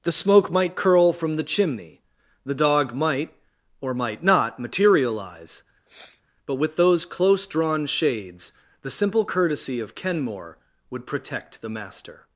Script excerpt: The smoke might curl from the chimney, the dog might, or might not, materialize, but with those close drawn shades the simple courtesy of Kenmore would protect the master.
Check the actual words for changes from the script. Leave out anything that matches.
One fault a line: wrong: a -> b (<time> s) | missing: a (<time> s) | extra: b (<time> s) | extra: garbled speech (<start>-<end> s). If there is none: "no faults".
no faults